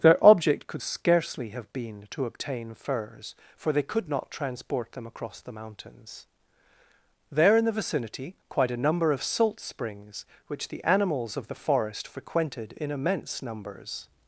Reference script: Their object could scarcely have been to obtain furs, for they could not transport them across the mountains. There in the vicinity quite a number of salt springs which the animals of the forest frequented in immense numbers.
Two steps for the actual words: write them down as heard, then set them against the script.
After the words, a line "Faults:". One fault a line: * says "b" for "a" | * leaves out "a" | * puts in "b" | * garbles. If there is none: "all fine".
Their object could scarcely have been to obtain furs, for they could not transport them across the mountains. There in the vicinity quite a number of salt springs which the animals of the forest frequented in immense numbers.
Faults:
all fine